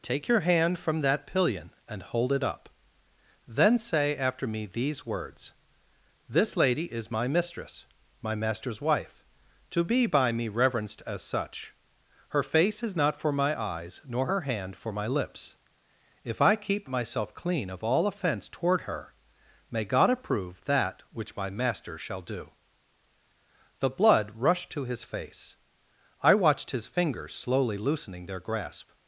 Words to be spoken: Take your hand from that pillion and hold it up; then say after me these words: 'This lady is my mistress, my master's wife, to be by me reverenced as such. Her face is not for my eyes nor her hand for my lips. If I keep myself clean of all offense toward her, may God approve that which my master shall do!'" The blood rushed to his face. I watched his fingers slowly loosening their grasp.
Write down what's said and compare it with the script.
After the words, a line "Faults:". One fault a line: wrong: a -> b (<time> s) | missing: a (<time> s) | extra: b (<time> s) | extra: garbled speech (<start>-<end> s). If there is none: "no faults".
Take your hand from that pillion and hold it up; then say after me these words: 'This lady is my mistress, my master's wife, to be by me reverenced as such. Her face is not for my eyes nor her hand for my lips. If I keep myself clean of all offense toward her, may God approve that which my master shall do!'" The blood rushed to his face. I watched his fingers slowly loosening their grasp.
Faults:
no faults